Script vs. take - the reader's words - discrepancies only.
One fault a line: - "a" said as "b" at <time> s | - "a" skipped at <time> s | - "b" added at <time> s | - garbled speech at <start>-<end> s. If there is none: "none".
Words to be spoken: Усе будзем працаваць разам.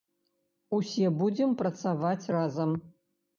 none